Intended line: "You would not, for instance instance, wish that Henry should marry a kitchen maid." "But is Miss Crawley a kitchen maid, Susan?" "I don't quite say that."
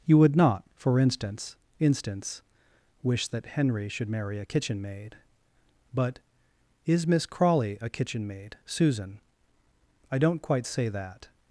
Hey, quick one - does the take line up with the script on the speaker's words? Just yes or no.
yes